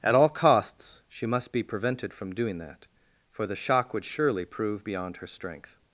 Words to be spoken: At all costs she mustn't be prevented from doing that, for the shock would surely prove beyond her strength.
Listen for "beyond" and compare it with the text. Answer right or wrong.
right